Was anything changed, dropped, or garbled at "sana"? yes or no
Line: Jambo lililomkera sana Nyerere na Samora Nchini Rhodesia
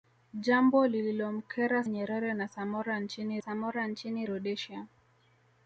yes